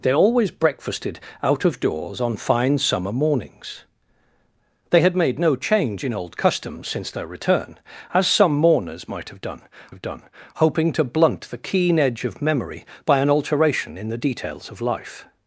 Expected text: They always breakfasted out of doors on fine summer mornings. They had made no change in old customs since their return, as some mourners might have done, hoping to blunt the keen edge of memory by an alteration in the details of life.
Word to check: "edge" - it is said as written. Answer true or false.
true